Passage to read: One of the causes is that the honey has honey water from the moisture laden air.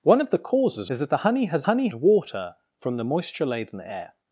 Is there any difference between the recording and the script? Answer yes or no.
no